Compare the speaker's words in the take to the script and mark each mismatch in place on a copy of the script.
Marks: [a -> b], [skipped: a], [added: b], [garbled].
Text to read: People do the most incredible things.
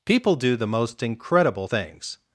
People do the most incredible things.